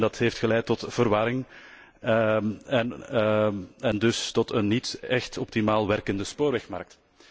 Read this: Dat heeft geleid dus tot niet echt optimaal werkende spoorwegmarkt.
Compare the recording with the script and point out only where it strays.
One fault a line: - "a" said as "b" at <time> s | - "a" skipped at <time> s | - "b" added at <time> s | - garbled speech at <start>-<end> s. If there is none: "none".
- "tot verwarring en" added at 0.7 s
- "een" added at 4.5 s